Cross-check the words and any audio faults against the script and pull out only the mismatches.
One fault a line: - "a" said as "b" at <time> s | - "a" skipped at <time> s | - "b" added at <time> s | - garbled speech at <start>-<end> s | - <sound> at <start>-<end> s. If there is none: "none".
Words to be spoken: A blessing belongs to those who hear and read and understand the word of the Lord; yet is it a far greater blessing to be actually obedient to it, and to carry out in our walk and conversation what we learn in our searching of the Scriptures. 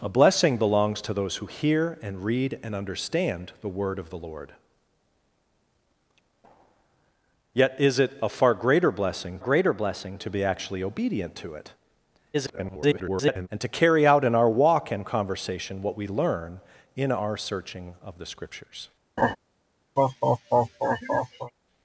- "greater blessing" added at 9.4 s
- garbled speech at 12.3-13.5 s
- laugh at 19.2-19.4 s
- laugh at 20.0-21.5 s